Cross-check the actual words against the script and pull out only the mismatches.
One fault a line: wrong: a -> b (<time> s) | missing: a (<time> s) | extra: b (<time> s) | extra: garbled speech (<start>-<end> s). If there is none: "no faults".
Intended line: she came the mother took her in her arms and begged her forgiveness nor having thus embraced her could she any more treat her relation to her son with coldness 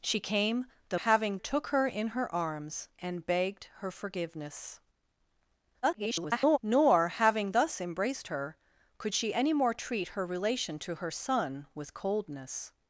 wrong: mother -> having (0.9 s)
extra: garbled speech (5.8-6.6 s)